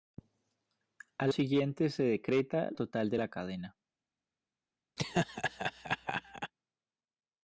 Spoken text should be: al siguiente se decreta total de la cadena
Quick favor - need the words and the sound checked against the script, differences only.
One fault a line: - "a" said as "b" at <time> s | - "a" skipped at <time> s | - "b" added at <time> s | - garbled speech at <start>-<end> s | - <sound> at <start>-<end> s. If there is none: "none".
- laugh at 5.0-6.5 s